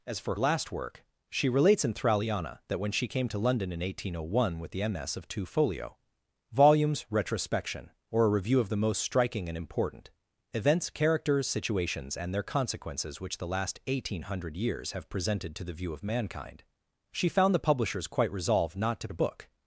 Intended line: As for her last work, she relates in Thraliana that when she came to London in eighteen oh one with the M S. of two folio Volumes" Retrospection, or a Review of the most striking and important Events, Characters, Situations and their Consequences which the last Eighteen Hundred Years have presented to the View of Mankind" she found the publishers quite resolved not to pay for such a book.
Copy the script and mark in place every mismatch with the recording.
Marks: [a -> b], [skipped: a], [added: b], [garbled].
As for [skipped: her] last work, she relates in Thraliana that when she came to London in eighteen oh one with the M S. of two folio Volumes" Retrospection, or a Review of the most striking and important Events, Characters, Situations and their Consequences which the last Eighteen Hundred Years have presented to the View of Mankind" she found the publishers quite resolved not to [skipped: pay for such] a book.